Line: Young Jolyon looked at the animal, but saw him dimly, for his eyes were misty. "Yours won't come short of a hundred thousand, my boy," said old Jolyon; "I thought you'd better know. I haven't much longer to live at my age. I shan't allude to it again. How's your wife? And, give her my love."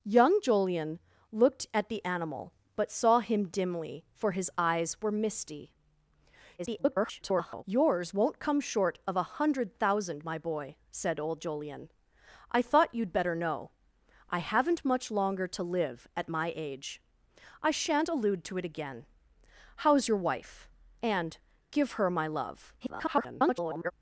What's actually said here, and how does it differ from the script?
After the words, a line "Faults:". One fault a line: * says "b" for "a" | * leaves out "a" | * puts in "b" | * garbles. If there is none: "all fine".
Young Jolyon looked at the animal, but saw him dimly, for his eyes were misty. [garbled] "Yours won't come short of a hundred thousand, my boy," said old Jolyon; "I thought you'd better know. I haven't much longer to live at my age. I shan't allude to it again. How's your wife? And, give her my love." [garbled]
Faults:
* garbles
* garbles